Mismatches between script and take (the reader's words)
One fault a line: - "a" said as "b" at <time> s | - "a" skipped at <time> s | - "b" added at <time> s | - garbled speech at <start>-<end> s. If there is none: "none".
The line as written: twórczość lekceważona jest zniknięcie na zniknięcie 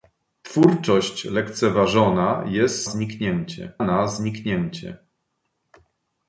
none